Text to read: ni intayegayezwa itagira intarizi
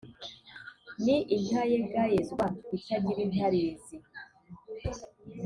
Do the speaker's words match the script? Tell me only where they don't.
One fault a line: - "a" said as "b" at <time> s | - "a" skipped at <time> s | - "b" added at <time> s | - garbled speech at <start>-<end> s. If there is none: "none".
none